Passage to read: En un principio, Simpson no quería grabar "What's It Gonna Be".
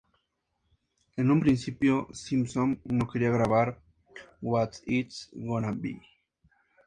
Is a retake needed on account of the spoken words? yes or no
no